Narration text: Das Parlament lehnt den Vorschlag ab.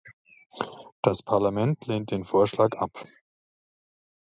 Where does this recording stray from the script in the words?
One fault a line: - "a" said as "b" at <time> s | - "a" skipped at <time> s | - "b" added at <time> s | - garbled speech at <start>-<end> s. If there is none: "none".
none